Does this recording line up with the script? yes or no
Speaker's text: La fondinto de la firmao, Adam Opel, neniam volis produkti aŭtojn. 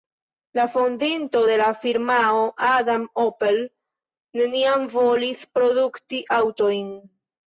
yes